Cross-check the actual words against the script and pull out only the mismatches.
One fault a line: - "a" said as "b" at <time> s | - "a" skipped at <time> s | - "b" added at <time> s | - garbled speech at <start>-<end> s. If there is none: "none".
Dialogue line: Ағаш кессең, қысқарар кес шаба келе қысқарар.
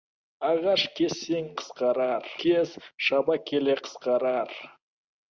none